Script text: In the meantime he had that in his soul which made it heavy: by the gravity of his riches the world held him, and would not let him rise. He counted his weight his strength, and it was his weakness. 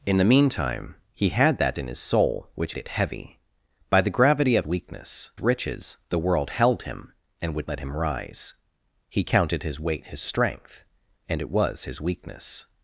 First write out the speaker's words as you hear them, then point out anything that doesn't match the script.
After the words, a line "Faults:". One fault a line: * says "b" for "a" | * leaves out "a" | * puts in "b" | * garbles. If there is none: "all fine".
In the meantime he had that in his soul which it heavy: by the gravity of weakness riches the world held him, and would let him rise. He counted his weight his strength, and it was his weakness.
Faults:
* leaves out "made"
* says "weakness" for "his"
* leaves out "not"